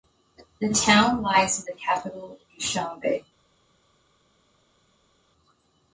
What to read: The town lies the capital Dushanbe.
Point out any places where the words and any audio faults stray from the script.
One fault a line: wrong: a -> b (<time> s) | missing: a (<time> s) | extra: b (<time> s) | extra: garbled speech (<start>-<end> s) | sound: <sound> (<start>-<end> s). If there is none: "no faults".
no faults